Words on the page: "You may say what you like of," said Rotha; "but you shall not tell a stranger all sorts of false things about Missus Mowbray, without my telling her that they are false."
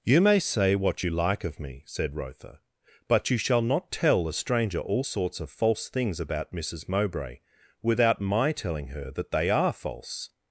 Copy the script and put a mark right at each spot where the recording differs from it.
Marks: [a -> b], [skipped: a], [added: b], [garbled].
"You may say what you like of," [added: me] said Rotha; "but you shall not tell a stranger all sorts of false things about Missus Mowbray, without my telling her that they are false."